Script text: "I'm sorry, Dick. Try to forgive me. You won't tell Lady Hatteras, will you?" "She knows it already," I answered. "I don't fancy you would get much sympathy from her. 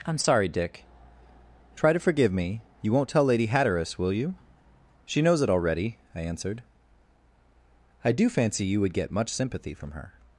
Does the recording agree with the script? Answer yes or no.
no